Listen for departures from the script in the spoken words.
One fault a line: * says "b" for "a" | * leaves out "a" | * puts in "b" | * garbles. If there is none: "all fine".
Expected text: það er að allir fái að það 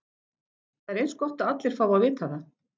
* puts in "eins gott"
* puts in "vita"